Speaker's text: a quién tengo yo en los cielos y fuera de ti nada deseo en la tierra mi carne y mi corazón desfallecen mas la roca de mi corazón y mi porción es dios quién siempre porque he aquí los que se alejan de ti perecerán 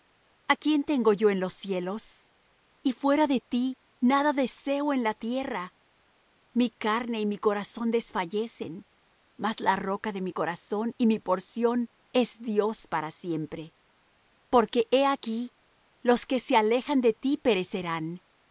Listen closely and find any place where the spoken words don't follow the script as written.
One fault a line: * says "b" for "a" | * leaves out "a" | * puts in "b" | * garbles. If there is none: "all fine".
* says "para" for "quién"